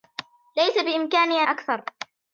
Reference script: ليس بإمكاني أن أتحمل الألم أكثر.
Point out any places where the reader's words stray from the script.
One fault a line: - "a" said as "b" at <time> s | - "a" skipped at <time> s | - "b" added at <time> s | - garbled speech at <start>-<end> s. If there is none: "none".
- "أن أتحمل الألم" skipped at 1.4 s